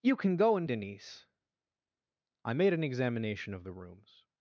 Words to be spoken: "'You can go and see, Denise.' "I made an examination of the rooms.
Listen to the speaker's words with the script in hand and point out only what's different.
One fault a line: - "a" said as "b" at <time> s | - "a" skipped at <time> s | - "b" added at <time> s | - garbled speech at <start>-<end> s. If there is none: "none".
- "see" skipped at 0.7 s